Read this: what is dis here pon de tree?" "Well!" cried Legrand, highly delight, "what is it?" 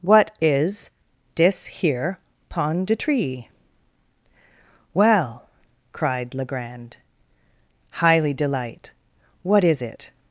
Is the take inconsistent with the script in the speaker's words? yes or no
no